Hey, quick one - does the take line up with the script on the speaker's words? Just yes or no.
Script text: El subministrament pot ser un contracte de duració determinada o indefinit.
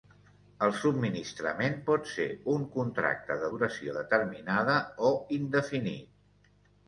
yes